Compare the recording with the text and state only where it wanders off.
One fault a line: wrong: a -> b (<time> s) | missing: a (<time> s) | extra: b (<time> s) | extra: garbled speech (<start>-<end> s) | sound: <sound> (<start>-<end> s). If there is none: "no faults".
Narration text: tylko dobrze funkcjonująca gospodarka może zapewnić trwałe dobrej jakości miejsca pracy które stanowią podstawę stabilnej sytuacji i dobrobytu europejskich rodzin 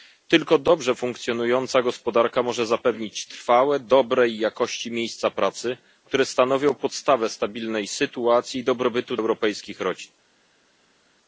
no faults